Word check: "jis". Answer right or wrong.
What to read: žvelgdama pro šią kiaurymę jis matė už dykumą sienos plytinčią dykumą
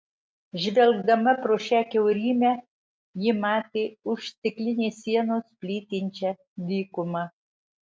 wrong